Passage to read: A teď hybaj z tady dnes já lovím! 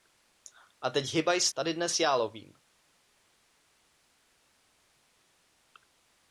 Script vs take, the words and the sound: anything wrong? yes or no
no